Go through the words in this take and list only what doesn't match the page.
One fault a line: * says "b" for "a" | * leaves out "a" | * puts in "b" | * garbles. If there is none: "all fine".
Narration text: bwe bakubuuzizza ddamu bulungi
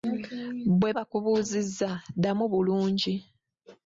all fine